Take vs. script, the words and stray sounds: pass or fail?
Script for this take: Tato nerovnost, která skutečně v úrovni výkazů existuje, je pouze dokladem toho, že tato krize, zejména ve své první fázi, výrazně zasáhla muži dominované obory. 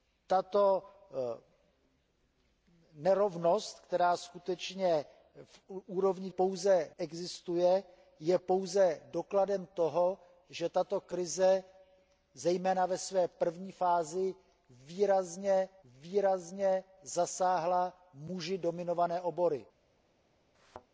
fail